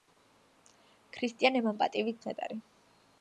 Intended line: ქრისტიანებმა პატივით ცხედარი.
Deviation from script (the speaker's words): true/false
false